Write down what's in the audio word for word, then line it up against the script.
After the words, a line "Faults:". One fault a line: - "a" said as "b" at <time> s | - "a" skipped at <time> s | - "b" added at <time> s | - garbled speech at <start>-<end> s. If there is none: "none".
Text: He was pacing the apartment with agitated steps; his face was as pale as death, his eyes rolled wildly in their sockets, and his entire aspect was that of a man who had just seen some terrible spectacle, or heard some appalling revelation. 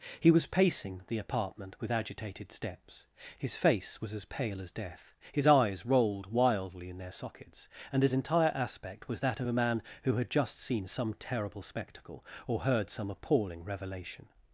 He was pacing the apartment with agitated steps; his face was as pale as death, his eyes rolled wildly in their sockets, and his entire aspect was that of a man who had just seen some terrible spectacle, or heard some appalling revelation.
Faults:
none